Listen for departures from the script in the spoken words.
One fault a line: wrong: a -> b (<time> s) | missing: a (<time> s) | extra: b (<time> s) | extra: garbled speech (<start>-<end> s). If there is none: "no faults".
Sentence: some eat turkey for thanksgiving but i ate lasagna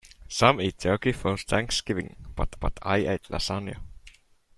extra: but (2.6 s)